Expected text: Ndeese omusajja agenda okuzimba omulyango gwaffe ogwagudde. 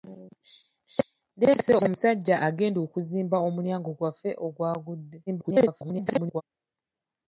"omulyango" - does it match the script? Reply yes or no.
yes